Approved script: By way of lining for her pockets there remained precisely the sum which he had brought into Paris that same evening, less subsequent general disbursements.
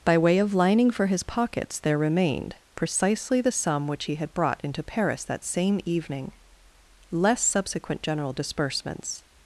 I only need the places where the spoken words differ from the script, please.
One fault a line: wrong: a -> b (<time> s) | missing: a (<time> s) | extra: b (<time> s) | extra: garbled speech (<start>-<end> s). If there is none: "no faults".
wrong: her -> his (1.1 s)